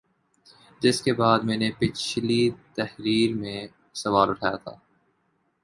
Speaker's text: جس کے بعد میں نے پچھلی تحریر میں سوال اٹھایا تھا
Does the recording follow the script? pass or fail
pass